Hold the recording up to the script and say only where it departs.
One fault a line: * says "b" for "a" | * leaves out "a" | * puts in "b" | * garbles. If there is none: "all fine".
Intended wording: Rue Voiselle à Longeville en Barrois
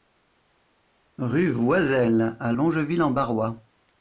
all fine